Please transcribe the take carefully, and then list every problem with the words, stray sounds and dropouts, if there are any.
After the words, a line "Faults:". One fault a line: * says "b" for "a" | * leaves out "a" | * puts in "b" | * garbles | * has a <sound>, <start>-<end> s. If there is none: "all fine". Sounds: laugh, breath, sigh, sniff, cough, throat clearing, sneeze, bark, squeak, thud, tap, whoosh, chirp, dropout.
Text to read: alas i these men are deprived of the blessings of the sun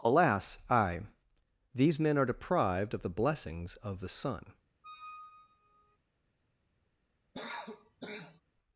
alas i these men are deprived of the blessings of the sun
Faults:
* has a squeak, 4.8-6.0 s
* has a cough, 7.3-8.4 s